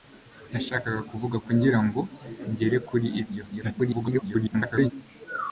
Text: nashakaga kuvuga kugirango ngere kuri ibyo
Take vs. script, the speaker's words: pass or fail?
fail